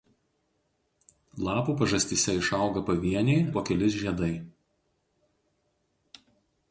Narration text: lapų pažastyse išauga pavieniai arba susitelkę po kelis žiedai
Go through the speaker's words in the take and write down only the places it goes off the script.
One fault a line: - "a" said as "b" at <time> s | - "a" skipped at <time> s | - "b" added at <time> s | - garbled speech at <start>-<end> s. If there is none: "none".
- "arba susitelkę" skipped at 3.4 s